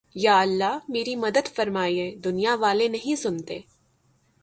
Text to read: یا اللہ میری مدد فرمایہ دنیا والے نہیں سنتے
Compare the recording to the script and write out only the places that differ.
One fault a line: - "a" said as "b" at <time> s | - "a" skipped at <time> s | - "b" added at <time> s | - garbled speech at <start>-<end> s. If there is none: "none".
none